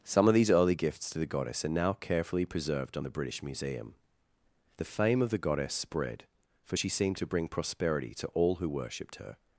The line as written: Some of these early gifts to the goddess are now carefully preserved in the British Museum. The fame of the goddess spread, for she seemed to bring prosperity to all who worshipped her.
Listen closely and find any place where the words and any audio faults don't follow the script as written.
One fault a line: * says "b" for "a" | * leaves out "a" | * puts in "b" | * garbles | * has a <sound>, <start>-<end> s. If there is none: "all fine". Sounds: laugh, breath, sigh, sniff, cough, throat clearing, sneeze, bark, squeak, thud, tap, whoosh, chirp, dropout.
* says "on" for "in"